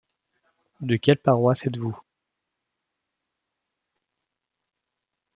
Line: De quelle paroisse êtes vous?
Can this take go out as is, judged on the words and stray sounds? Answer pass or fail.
pass